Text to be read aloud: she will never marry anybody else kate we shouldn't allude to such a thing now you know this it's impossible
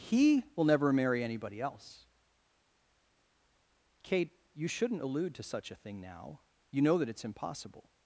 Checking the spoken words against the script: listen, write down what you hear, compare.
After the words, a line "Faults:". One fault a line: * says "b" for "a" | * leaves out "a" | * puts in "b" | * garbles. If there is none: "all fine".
he will never marry anybody else kate you shouldn't allude to such a thing now you know that it's impossible
Faults:
* says "he" for "she"
* says "you" for "we"
* says "that" for "this"